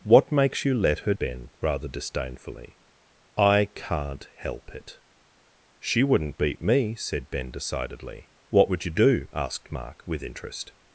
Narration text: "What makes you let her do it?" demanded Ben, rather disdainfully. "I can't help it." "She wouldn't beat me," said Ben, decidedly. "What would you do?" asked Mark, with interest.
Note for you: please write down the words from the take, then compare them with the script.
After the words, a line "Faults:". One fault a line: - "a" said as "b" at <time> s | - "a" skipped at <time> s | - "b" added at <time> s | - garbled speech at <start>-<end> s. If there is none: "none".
"What makes you let her Ben, rather disdainfully. "I can't help it." "She wouldn't beat me," said Ben, decidedly. "What would you do?" asked Mark, with interest.
Faults:
- "do it demanded" skipped at 1.1 s